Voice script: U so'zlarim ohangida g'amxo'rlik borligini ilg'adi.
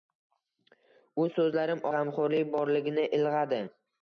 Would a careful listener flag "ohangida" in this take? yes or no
yes